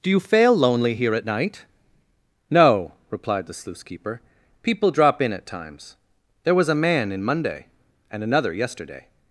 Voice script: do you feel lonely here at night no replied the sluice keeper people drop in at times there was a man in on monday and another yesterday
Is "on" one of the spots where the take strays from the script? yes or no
yes